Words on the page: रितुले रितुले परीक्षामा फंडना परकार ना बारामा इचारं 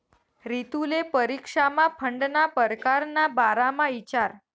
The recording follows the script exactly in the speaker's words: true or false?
false